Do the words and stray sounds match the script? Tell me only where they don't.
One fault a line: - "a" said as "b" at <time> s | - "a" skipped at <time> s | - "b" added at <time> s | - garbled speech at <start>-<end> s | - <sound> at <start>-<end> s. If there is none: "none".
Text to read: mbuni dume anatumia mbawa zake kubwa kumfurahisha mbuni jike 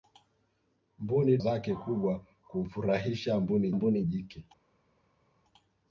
- "dume anatumia mbawa" skipped at 1.4 s
- "mbuni" added at 3.7 s